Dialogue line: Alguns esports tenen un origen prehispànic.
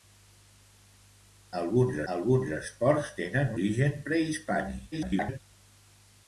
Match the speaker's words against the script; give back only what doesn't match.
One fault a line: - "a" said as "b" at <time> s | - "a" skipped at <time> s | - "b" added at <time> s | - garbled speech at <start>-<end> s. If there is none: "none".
- "alguns" added at 2.1 s
- "un" skipped at 3.6 s
- garbled speech at 4.9-5.4 s